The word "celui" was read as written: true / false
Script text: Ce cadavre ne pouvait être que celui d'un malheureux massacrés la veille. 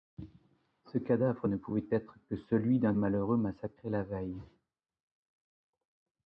true